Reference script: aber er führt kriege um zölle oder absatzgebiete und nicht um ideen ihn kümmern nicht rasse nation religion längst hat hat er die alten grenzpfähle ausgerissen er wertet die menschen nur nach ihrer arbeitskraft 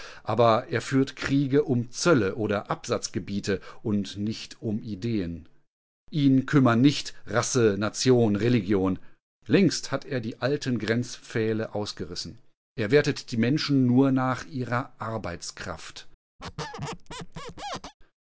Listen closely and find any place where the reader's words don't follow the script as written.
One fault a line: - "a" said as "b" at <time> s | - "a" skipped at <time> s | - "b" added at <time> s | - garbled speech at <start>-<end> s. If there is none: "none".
- "hat" skipped at 10.0 s